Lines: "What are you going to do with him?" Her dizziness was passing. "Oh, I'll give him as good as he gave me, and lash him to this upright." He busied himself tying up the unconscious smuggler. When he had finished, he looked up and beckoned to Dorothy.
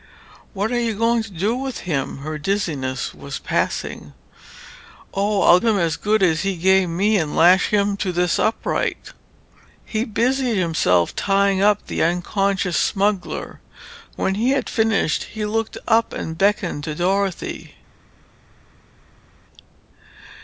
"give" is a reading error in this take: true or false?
true